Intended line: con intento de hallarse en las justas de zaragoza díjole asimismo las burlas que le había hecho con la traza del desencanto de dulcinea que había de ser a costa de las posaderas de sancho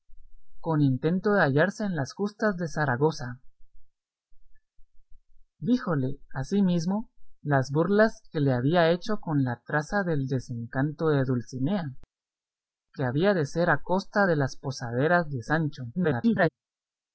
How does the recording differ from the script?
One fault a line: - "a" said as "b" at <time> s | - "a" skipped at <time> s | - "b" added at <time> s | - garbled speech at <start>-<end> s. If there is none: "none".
- garbled speech at 15.9-16.5 s